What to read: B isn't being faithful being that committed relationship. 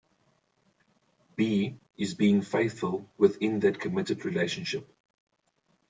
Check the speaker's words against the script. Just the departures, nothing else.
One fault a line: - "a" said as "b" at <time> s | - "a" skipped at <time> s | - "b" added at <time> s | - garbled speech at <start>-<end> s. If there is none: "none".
- "isn't" said as "is" at 2.0 s
- "being" said as "within" at 3.2 s